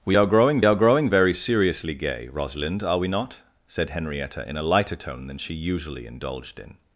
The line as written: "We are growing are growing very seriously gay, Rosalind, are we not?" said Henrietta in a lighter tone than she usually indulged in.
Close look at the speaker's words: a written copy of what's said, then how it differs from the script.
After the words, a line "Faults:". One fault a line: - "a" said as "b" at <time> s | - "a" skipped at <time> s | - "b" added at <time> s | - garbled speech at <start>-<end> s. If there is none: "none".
"We are growing are growing very seriously gay, Rosalind, are we not?" said Henrietta in a lighter tone than she usually indulged in.
Faults:
none